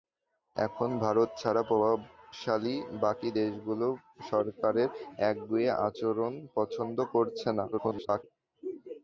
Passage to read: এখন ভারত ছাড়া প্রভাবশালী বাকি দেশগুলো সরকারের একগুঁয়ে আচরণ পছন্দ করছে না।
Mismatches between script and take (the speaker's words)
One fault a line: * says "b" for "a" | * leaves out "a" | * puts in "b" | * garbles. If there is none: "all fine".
* garbles